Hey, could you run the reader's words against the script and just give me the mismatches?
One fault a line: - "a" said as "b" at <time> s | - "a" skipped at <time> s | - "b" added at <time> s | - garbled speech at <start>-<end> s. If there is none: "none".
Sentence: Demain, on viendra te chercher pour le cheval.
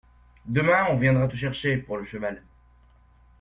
none